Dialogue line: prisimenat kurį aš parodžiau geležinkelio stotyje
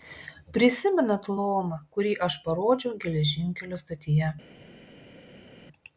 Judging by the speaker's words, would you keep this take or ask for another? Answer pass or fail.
fail